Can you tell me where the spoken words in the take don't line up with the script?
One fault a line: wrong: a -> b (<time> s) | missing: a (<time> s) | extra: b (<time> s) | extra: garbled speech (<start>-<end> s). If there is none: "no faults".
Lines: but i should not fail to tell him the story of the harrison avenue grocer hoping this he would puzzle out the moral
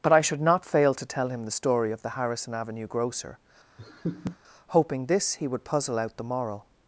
no faults